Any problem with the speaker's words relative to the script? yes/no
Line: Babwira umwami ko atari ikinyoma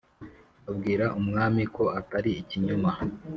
no